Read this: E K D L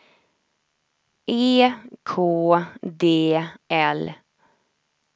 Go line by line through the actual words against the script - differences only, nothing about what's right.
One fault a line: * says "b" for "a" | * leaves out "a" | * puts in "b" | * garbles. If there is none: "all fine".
all fine